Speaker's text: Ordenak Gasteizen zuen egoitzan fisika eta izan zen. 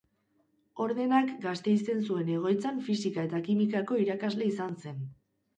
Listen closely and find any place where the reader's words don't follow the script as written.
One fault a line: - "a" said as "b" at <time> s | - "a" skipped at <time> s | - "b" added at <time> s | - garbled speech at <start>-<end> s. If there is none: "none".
- "kimikako irakasle" added at 3.5 s